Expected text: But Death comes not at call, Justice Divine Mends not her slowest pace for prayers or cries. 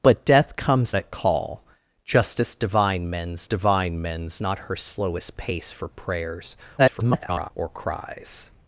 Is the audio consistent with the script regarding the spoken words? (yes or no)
no